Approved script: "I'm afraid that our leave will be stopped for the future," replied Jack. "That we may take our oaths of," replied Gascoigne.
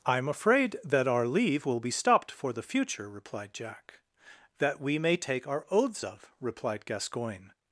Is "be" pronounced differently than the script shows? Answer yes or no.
no